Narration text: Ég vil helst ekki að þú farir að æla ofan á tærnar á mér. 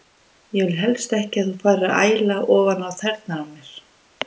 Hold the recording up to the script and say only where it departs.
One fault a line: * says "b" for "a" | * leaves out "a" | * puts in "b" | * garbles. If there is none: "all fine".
all fine